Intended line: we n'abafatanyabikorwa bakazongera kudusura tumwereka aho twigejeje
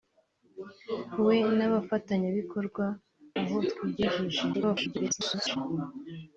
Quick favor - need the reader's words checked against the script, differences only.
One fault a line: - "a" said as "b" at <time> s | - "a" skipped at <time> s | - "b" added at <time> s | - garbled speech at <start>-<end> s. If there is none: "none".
- "bakazongera kudusura tumwereka" skipped at 2.9 s
- garbled speech at 4.5-5.6 s